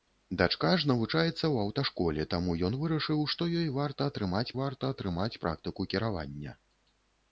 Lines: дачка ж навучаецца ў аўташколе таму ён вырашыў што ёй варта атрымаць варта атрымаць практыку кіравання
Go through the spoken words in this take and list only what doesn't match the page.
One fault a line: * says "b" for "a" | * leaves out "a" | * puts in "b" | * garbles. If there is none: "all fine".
all fine